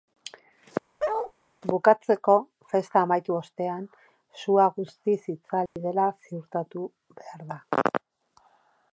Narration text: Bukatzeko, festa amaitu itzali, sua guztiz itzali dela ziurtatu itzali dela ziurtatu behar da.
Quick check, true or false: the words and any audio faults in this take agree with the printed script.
false